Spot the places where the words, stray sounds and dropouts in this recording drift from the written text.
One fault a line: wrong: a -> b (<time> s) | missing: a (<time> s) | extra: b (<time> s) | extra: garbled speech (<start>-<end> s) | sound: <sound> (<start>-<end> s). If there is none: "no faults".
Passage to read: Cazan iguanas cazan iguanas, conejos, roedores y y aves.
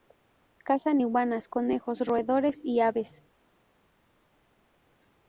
missing: cazan iguanas (1.5 s)
missing: y (2.8 s)